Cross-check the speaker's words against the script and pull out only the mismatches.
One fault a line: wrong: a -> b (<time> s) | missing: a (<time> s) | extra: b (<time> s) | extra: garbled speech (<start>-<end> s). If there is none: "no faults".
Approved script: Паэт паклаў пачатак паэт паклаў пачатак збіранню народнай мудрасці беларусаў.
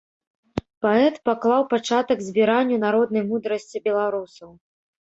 missing: паэт паклаў пачатак (2.2 s)